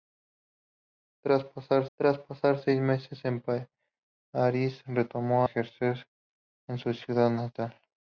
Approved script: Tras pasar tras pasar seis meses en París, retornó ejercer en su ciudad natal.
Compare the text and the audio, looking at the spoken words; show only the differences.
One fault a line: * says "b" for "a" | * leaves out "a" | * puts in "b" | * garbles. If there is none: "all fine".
all fine